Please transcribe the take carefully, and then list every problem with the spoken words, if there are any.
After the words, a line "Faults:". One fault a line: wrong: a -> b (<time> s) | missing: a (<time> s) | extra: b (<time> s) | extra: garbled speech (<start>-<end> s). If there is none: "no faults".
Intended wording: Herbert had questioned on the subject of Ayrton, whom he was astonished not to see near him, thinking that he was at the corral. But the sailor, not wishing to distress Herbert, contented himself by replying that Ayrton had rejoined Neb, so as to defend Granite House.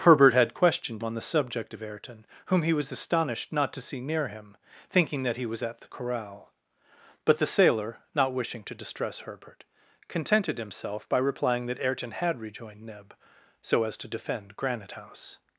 Herbert had questioned on the subject of Ayrton, whom he was astonished not to see near him, thinking that he was at the corral. But the sailor, not wishing to distress Herbert, contented himself by replying that Ayrton had rejoined Neb, so as to defend Granite House.
Faults:
no faults